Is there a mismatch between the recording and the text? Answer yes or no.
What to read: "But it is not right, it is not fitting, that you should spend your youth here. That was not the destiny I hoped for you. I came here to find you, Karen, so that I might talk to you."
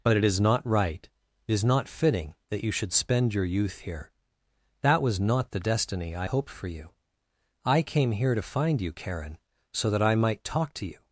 no